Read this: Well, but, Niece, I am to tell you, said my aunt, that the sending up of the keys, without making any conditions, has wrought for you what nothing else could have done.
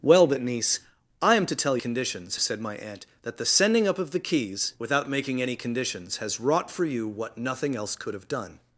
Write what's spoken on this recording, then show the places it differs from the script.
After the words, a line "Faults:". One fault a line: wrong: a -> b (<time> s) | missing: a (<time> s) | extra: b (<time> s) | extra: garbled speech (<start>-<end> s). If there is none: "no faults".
Well, but, Niece, I am to tell conditions, said my aunt, that the sending up of the keys, without making any conditions, has wrought for you what nothing else could have done.
Faults:
wrong: you -> conditions (1.8 s)